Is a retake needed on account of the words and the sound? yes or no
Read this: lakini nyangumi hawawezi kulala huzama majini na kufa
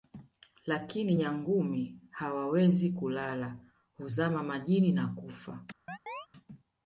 yes